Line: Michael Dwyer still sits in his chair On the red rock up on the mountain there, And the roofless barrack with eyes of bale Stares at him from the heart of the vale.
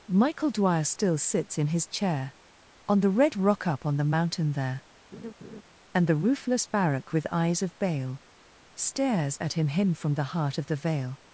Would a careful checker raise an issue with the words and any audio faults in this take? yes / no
yes